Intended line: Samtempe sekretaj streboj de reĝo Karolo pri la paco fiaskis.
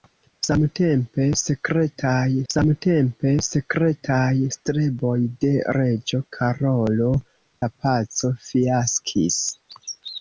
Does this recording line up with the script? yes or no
no